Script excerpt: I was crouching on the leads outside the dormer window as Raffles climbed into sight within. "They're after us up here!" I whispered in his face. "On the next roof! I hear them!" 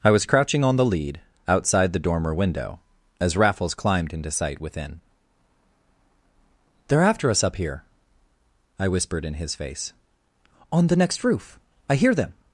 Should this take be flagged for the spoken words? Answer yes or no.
yes